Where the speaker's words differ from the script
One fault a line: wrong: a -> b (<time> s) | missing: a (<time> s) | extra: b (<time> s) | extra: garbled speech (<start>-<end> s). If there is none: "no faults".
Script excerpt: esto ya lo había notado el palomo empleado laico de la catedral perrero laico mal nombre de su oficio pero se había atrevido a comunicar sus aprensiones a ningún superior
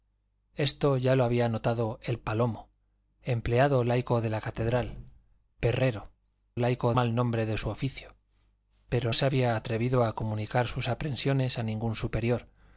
no faults